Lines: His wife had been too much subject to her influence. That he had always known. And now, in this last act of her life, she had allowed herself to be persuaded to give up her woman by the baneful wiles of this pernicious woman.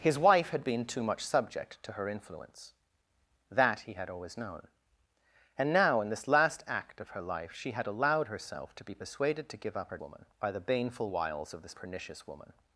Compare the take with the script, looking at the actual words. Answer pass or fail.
pass